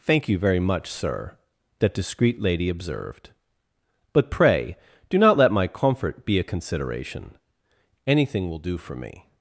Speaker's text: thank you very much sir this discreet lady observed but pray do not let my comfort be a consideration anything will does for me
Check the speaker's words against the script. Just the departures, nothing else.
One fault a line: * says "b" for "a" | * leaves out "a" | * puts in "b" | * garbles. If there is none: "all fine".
* says "that" for "this"
* says "do" for "does"